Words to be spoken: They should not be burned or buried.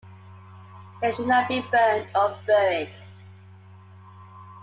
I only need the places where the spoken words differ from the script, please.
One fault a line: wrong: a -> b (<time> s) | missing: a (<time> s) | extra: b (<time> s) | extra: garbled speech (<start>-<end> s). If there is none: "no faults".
no faults